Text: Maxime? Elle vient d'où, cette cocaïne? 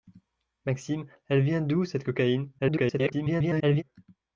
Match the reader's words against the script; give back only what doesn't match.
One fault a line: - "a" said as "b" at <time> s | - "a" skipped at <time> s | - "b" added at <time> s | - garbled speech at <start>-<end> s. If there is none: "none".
- garbled speech at 2.6-3.8 s